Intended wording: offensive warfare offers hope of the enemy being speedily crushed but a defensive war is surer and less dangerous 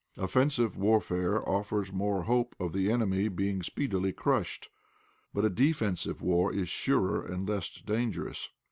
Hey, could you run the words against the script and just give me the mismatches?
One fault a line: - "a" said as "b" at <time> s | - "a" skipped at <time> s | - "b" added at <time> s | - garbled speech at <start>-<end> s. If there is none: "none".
- "more" added at 1.9 s